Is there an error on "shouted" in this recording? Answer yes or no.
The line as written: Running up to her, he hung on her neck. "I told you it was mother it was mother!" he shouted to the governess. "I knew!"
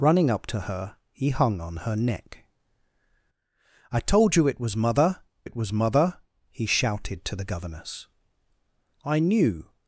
no